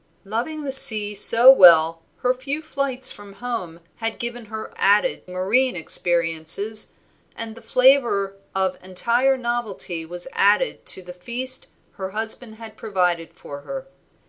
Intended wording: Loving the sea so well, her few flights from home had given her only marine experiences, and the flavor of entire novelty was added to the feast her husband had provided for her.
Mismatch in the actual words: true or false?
true